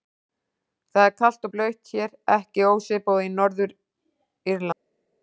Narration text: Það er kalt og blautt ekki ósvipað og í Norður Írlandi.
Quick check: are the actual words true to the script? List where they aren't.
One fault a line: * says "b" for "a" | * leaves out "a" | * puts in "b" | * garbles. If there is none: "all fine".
* puts in "hér"